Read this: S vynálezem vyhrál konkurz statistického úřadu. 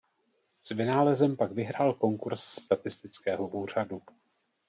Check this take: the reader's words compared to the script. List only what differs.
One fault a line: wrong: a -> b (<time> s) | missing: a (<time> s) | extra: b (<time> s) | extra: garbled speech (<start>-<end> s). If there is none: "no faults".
extra: pak (1.4 s)